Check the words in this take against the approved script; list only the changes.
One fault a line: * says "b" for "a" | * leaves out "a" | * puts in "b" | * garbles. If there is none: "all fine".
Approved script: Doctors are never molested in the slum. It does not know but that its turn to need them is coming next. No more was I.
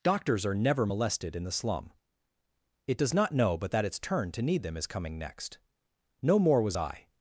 all fine